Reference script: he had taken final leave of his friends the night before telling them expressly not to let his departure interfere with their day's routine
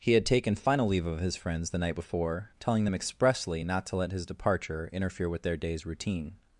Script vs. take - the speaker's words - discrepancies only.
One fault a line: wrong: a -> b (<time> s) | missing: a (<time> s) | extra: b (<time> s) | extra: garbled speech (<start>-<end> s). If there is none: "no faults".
no faults